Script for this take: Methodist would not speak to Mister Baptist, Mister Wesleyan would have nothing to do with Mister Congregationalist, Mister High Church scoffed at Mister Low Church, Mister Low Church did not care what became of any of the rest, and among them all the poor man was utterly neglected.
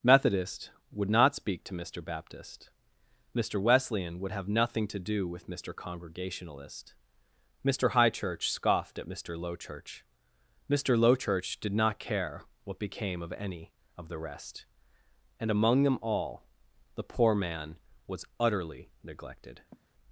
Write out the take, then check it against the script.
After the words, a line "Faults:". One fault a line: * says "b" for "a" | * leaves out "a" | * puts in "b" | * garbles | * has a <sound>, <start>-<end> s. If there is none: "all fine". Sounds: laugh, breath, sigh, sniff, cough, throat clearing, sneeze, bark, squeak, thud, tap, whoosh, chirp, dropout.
Methodist would not speak to Mister Baptist, Mister Wesleyan would have nothing to do with Mister Congregationalist, Mister High Church scoffed at Mister Low Church, Mister Low Church did not care what became of any of the rest, and among them all the poor man was utterly neglected.
Faults:
* has a sigh, 19.7-19.9 s